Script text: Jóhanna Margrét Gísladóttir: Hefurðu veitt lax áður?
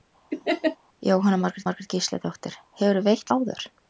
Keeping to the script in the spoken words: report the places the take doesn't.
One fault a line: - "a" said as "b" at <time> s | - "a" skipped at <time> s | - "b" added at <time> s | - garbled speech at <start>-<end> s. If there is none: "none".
- "Margrét" added at 1.7 s
- "lax" skipped at 3.3 s